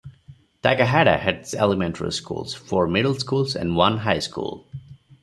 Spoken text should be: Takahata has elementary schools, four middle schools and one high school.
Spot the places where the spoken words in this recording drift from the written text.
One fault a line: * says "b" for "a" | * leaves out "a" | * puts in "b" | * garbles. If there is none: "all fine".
all fine